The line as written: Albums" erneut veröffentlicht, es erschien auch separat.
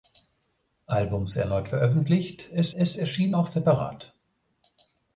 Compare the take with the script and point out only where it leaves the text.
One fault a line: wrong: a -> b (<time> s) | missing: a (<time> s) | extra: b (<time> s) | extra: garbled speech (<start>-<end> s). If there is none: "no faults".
extra: es (2.7 s)